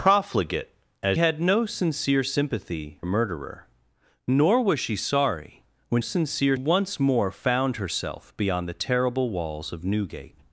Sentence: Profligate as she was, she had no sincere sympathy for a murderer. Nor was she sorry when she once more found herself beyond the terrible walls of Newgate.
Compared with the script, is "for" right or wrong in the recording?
wrong